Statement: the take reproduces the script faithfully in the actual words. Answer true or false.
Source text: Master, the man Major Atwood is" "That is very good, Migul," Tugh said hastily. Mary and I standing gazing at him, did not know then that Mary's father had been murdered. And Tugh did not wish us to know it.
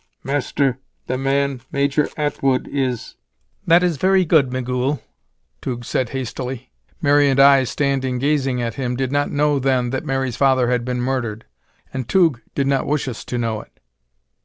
true